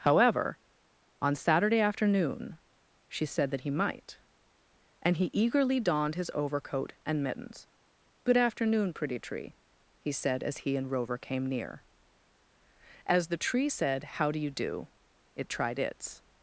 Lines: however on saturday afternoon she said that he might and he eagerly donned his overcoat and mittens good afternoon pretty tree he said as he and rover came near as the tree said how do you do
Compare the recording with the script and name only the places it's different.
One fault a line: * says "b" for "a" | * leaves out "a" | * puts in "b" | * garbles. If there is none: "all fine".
* puts in "it tried its"